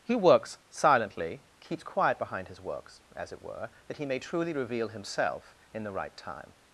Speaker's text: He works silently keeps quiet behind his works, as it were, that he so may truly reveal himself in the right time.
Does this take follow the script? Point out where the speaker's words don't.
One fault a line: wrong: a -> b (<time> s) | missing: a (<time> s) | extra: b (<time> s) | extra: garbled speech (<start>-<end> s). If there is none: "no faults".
missing: so (4.1 s)